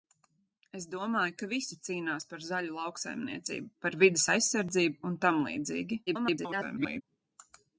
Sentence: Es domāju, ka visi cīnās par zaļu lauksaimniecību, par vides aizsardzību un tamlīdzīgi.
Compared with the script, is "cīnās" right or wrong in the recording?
right